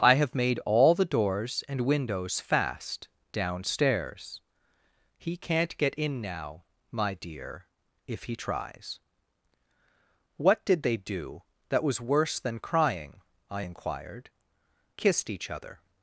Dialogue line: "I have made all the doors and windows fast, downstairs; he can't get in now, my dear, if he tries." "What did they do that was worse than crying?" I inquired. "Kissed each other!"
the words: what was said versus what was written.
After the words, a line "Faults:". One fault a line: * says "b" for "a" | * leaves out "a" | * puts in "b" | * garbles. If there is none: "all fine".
"I have made all the doors and windows fast, downstairs; he can't get in now, my dear, if he tries." "What did they do that was worse than crying?" I inquired. "Kissed each other!"
Faults:
all fine